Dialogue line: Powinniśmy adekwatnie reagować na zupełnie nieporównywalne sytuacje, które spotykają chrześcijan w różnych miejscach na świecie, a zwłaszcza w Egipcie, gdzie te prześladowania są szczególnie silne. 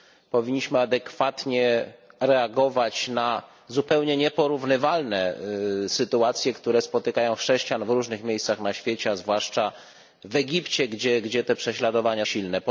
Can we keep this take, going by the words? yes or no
no